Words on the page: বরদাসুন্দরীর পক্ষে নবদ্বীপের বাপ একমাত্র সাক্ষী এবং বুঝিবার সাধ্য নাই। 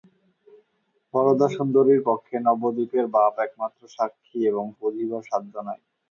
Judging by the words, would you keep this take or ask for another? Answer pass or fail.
pass